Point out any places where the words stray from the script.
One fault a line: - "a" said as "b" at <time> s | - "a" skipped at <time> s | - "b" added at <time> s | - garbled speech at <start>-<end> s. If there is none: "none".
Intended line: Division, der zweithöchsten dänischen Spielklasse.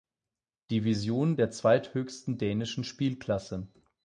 none